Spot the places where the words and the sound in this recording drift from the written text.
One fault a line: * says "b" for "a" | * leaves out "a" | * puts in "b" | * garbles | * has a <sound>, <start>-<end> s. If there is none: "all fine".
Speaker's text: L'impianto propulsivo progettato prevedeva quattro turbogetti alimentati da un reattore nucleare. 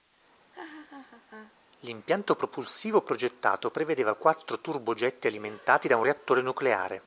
* has a laugh, 0.5-1.5 s